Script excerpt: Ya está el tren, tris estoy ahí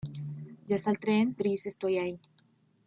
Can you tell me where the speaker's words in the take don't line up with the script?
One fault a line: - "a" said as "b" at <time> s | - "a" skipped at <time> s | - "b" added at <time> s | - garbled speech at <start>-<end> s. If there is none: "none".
none